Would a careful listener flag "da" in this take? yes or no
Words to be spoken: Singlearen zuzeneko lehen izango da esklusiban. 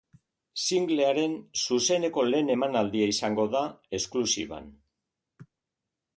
no